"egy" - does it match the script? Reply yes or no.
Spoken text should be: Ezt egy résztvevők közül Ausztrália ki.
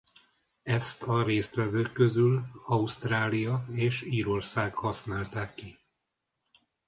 no